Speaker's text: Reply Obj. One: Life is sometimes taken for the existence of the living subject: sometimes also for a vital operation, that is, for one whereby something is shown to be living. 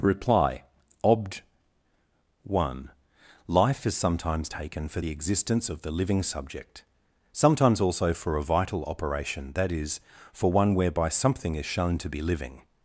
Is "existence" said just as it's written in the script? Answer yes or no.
yes